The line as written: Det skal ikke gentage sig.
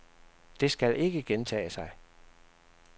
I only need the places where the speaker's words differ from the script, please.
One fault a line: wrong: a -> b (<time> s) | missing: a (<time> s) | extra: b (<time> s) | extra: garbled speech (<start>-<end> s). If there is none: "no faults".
no faults